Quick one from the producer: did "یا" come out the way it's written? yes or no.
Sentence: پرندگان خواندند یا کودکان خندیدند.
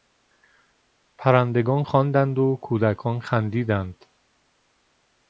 no